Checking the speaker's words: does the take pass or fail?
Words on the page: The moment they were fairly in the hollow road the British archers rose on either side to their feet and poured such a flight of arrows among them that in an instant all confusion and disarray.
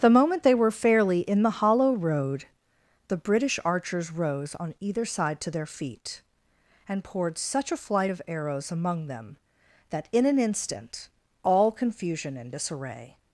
pass